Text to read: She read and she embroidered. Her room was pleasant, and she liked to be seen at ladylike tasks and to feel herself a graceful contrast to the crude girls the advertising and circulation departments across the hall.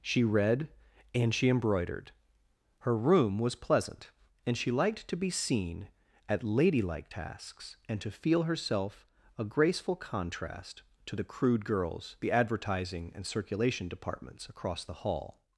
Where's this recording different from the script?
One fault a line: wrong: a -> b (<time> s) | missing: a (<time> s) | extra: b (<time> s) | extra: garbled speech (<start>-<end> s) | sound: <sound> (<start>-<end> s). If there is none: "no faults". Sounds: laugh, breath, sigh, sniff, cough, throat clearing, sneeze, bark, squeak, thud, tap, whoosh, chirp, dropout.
no faults